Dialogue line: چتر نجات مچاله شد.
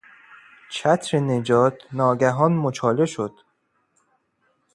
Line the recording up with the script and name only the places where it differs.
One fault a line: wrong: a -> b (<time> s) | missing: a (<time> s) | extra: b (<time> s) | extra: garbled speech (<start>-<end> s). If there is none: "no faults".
extra: ناگهان (1.9 s)